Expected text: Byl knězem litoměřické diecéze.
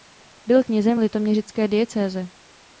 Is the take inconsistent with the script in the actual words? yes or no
no